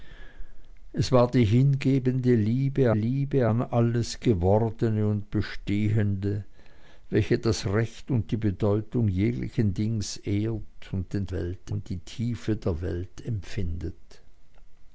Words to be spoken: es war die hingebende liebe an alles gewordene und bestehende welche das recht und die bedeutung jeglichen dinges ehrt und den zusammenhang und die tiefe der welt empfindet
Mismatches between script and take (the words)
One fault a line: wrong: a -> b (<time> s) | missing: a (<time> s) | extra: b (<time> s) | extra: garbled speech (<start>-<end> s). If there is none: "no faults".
extra: liebe (2.9 s)
wrong: zusammenhang -> welt (11.3 s)